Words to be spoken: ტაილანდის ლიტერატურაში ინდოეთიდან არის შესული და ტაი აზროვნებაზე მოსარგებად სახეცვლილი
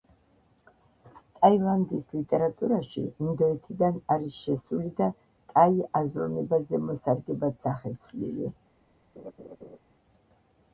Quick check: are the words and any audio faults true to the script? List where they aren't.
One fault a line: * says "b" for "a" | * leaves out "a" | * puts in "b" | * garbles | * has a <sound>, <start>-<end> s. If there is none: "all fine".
* has a laugh, 9.2-9.8 s